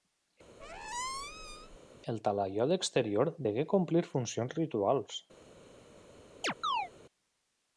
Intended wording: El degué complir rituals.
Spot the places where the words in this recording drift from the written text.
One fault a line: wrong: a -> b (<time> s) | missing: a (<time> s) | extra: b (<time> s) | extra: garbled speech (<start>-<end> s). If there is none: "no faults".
extra: talaiot exterior (2.3 s)
extra: funcions (4.1 s)